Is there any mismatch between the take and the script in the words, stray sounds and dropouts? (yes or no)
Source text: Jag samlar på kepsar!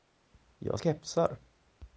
yes